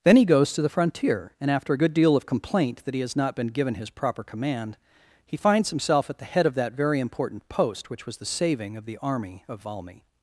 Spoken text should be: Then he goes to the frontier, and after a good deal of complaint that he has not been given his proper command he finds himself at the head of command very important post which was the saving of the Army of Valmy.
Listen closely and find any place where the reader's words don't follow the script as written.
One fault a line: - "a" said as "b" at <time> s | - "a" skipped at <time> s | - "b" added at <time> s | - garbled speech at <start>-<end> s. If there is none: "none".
- "command" said as "that" at 6.5 s